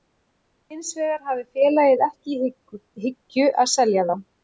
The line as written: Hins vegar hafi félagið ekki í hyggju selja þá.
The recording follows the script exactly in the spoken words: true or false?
false